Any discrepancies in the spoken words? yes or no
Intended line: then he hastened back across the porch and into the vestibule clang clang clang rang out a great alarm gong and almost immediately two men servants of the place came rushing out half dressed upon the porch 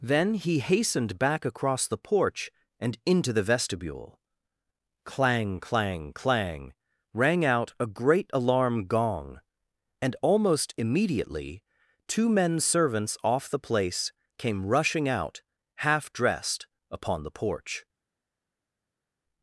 yes